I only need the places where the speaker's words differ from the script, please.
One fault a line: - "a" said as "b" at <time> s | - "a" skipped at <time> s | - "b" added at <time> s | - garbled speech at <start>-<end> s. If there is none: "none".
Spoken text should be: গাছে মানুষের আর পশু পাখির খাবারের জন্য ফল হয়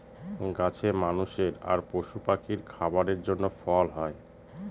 none